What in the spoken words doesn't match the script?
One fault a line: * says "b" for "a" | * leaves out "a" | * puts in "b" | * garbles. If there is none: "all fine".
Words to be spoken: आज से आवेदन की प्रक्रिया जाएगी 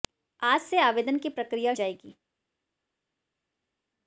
all fine